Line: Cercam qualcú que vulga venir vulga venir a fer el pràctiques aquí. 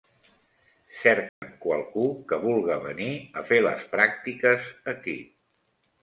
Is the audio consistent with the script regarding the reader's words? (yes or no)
no